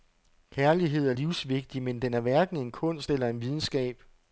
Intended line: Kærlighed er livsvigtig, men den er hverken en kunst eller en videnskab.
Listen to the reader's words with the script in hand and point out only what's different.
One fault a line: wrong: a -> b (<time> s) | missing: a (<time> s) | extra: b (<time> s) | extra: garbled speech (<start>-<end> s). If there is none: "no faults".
no faults